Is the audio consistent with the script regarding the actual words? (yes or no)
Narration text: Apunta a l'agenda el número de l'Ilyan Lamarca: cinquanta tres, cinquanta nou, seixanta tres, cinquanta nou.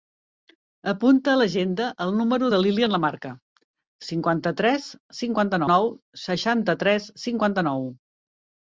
yes